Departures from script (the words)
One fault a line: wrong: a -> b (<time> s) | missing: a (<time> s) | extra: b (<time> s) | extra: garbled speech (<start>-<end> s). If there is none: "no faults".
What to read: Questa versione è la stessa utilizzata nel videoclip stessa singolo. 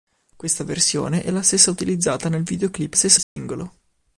no faults